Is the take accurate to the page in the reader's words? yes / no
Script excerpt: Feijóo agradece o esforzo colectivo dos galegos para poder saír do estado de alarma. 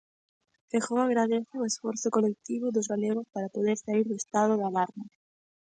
yes